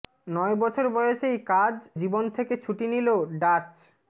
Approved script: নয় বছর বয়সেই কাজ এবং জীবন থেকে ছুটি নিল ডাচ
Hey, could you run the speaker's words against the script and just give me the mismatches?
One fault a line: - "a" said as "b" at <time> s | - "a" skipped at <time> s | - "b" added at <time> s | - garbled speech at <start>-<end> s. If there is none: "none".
- "এবং" skipped at 1.8 s